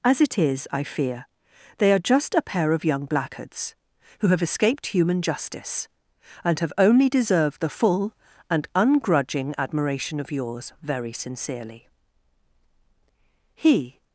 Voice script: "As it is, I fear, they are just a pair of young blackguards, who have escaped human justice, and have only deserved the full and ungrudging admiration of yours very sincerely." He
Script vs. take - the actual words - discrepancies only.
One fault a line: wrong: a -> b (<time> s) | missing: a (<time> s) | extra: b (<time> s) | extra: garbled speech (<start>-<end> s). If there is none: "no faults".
no faults